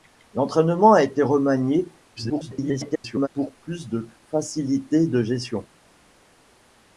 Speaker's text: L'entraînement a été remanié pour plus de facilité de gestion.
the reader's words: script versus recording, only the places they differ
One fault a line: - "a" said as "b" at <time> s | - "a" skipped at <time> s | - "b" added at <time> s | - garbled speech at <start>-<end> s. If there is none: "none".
- garbled speech at 2.2-3.3 s